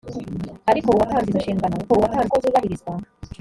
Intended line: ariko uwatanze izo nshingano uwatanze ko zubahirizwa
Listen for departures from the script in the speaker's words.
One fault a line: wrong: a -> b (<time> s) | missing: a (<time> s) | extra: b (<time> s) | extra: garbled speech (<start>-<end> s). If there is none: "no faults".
no faults